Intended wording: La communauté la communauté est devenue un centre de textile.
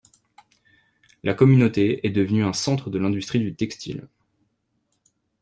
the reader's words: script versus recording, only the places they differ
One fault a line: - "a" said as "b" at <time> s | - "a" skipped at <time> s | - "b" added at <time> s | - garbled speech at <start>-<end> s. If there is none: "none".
- "la communauté" skipped at 2.1 s
- "l'industrie du" added at 3.0 s